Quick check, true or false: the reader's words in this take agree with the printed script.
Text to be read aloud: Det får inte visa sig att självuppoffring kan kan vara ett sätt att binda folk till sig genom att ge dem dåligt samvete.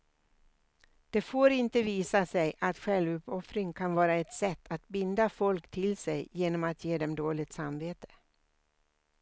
false